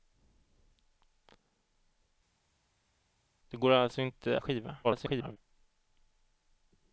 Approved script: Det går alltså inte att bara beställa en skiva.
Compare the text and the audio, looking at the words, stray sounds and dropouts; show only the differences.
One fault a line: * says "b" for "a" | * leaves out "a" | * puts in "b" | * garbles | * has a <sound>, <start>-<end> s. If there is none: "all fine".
* leaves out "att bara beställa"
* garbles